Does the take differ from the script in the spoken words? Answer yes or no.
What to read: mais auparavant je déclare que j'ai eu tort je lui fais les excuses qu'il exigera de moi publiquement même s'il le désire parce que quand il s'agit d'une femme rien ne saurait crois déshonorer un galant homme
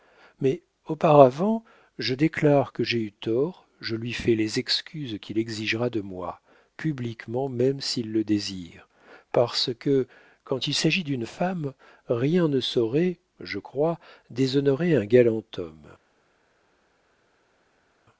yes